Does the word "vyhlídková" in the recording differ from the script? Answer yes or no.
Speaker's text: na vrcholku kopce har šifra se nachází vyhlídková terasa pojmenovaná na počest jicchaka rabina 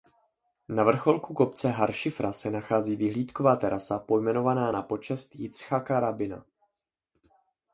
no